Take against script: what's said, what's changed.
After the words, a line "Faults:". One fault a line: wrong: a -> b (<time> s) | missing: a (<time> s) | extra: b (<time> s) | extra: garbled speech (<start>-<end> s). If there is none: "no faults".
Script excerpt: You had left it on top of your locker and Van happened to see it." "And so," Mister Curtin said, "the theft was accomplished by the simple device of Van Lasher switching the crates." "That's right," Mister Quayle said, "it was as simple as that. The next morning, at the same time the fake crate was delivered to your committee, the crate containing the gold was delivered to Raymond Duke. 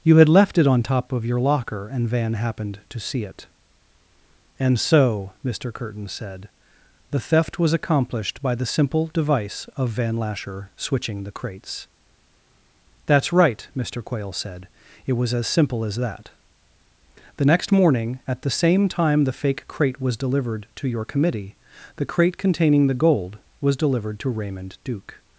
You had left it on top of your locker and Van happened to see it." "And so," Mister Curtin said, "the theft was accomplished by the simple device of Van Lasher switching the crates." "That's right," Mister Quayle said, "it was as simple as that. The next morning, at the same time the fake crate was delivered to your committee, the crate containing the gold was delivered to Raymond Duke.
Faults:
no faults